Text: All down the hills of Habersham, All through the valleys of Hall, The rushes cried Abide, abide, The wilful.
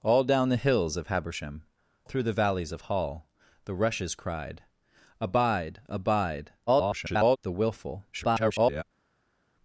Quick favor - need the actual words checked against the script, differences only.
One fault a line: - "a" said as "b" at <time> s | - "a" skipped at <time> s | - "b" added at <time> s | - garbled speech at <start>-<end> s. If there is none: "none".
- "All" skipped at 1.6 s
- garbled speech at 6.7-7.4 s
- garbled speech at 8.1-8.8 s